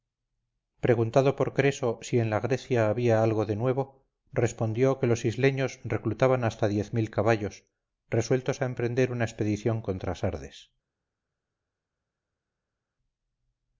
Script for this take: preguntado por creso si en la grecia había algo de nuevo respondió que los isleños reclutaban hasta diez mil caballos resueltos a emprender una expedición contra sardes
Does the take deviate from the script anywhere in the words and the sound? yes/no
no